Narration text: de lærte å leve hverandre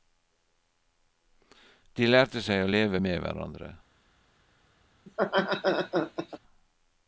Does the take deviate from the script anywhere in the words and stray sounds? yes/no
yes